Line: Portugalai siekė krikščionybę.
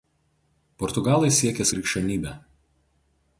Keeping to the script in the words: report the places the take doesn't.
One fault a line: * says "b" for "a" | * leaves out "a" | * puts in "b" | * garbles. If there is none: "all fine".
all fine